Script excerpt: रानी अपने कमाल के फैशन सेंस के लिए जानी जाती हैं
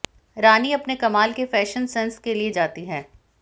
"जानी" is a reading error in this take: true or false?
true